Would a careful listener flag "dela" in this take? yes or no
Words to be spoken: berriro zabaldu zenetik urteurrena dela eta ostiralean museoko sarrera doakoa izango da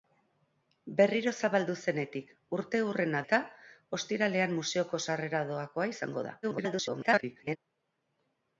yes